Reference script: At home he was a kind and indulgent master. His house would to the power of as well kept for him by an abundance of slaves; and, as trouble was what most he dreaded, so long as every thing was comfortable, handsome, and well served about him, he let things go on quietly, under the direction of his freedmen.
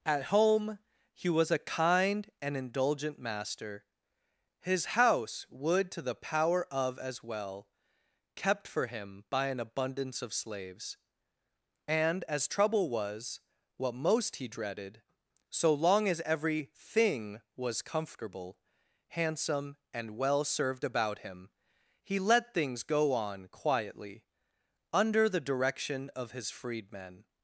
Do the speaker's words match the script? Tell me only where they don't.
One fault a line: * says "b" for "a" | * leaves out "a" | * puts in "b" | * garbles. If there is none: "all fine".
all fine